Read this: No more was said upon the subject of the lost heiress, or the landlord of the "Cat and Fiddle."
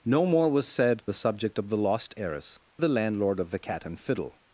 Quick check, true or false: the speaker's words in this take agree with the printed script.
false